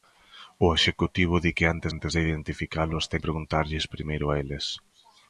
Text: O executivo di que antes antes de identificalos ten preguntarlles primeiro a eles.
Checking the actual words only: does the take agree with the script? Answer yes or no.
yes